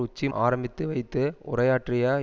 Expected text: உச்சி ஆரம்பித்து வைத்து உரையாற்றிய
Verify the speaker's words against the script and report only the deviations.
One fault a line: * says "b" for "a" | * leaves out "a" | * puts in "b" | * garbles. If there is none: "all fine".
all fine